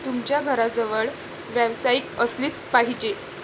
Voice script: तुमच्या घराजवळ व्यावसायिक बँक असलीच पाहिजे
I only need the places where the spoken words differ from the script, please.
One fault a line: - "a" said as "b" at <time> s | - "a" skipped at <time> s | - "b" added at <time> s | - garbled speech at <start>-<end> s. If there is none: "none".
- "बँक" skipped at 2.0 s